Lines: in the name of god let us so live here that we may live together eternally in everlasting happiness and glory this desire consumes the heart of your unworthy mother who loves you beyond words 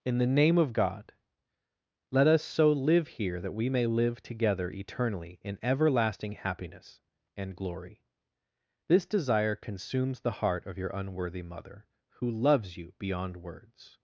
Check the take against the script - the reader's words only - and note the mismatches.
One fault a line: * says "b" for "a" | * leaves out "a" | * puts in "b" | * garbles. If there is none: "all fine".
all fine